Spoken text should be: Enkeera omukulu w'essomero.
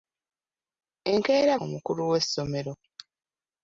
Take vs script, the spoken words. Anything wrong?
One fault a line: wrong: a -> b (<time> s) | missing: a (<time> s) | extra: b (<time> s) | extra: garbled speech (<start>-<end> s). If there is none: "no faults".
no faults